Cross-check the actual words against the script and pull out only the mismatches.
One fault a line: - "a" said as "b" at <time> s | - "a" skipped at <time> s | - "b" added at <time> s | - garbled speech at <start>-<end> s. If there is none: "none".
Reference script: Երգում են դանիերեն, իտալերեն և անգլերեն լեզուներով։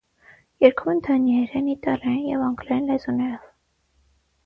none